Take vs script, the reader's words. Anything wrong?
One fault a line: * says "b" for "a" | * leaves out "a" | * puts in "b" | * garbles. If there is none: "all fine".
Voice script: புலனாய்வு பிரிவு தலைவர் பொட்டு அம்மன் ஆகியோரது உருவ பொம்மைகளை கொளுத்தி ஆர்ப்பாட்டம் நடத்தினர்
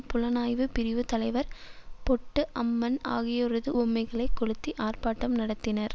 * leaves out "உருவ"